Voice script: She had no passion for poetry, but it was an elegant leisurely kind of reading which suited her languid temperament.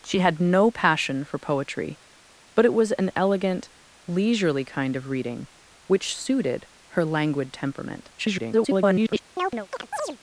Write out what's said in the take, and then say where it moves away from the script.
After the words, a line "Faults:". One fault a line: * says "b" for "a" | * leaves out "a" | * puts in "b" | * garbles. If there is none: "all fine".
She had no passion for poetry, but it was an elegant leisurely kind of reading which suited her languid temperament. [garbled]
Faults:
* garbles